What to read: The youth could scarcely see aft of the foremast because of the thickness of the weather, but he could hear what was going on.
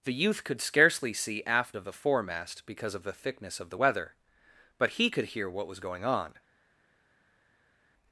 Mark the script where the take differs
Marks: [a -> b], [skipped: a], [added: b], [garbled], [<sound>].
The youth could scarcely see aft of the foremast because of the thickness of the weather, but he could hear what was going on.